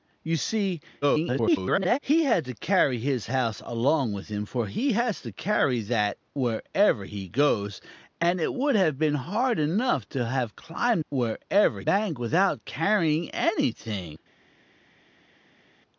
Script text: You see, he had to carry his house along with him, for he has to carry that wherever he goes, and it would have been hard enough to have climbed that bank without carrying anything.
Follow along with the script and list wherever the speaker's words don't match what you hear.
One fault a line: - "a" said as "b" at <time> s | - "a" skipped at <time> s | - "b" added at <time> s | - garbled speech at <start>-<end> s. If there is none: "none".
- garbled speech at 1.0-2.0 s
- "that" said as "wherever" at 11.1 s